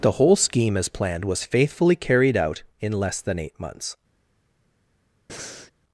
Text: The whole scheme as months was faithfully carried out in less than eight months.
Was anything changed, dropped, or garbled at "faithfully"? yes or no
no